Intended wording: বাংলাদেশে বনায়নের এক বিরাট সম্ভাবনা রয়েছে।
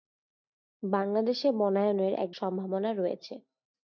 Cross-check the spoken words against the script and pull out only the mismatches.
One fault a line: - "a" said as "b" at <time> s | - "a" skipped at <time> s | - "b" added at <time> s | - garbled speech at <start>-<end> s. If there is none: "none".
- "বিরাট" skipped at 2.3 s